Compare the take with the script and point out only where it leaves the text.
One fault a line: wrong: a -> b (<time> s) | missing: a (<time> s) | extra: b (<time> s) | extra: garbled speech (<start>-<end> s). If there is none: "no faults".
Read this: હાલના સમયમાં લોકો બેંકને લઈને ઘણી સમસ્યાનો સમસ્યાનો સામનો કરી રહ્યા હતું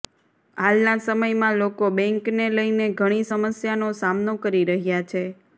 missing: સમસ્યાનો (3.9 s)
wrong: હતું -> છે (5.1 s)